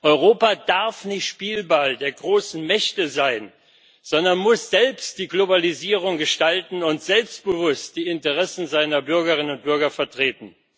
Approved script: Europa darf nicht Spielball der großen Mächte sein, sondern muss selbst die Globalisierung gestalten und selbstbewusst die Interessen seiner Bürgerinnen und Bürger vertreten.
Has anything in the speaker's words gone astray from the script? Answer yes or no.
no